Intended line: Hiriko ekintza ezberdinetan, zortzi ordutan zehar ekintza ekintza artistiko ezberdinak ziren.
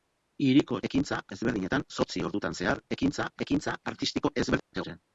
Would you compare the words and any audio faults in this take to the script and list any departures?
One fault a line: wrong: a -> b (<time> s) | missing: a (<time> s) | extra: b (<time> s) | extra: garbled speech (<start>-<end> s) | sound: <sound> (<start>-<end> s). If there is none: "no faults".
sound: dropout (4.6-4.7 s)